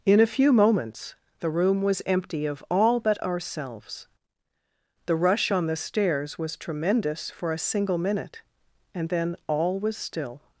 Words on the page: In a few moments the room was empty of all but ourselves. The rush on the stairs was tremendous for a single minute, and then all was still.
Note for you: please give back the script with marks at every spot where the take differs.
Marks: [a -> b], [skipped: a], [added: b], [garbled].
In a few moments the room was empty of all but ourselves. The rush on the stairs was tremendous for a single minute, and then all was still.